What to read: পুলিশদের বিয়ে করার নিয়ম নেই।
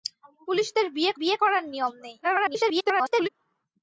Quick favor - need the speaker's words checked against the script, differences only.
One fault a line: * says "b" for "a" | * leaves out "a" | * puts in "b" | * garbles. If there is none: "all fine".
* puts in "বিয়ে"
* garbles